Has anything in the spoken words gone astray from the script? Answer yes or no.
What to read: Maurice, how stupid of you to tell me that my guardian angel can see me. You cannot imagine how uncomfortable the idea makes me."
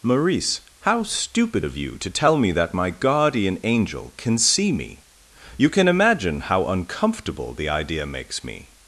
yes